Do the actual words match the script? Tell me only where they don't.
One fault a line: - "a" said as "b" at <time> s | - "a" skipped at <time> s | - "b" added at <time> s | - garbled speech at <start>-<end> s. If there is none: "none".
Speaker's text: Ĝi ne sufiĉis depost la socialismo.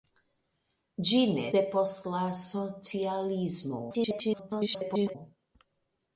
- "sufiĉis" skipped at 1.4 s
- garbled speech at 3.9-5.2 s